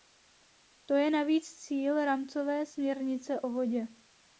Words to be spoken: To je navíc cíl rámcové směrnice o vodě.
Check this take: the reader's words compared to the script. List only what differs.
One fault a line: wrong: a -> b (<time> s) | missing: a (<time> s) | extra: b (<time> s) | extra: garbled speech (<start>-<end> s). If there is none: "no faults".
no faults